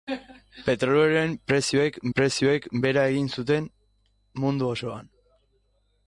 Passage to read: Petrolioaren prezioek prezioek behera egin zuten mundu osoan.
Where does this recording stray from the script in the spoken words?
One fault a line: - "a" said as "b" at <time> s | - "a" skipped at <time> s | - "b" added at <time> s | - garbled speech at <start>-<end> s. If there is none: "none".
none